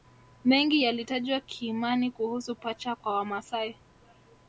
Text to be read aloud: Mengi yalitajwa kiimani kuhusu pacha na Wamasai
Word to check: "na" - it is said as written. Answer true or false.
false